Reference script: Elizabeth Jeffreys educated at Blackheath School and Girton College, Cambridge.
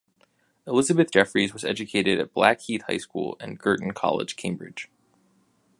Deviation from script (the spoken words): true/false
true